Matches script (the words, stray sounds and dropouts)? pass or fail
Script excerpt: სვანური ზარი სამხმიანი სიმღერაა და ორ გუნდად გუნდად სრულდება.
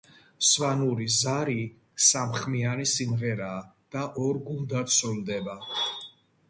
fail